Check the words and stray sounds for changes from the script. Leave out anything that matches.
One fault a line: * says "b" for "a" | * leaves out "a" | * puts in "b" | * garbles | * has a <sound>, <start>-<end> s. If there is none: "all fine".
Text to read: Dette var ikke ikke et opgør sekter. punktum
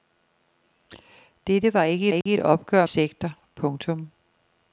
* has a dropout, 2.2-2.3 s